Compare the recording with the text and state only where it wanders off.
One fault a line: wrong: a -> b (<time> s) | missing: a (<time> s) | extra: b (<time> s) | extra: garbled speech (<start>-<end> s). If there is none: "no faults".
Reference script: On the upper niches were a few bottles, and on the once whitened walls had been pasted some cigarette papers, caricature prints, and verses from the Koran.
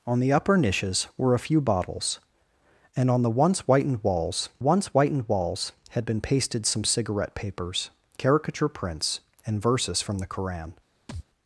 extra: once whitened walls (4.6 s)